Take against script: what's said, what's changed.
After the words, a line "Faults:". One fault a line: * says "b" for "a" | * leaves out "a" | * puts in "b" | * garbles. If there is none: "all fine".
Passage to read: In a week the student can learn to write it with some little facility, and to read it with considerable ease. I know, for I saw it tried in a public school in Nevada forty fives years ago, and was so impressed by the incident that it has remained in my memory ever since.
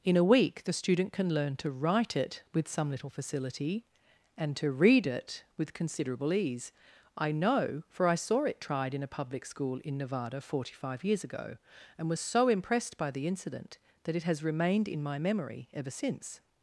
In a week the student can learn to write it with some little facility, and to read it with considerable ease. I know, for I saw it tried in a public school in Nevada forty five years ago, and was so impressed by the incident that it has remained in my memory ever since.
Faults:
* says "five" for "fives"